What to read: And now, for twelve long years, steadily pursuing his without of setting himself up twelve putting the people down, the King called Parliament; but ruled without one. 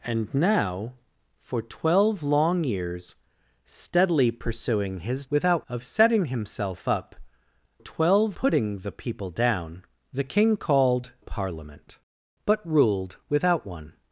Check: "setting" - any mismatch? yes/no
no